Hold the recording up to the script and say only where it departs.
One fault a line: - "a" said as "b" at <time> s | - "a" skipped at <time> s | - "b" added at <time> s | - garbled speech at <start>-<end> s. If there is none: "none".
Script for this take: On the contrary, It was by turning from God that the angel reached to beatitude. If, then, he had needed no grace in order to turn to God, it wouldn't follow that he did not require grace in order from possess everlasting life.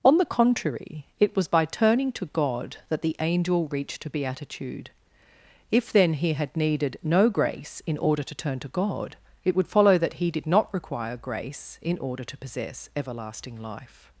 - "from" said as "to" at 2.1 s
- "wouldn't" said as "would" at 9.6 s
- "from" said as "to" at 12.2 s